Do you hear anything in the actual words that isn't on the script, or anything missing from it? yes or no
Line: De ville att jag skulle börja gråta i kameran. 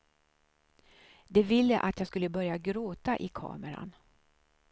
no